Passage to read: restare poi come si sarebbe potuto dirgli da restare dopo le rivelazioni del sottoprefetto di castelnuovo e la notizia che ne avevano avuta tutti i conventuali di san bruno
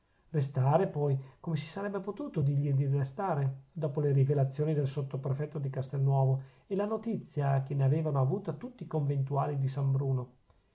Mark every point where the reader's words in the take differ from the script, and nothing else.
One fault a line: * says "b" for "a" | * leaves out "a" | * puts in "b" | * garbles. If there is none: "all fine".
* says "di" for "da"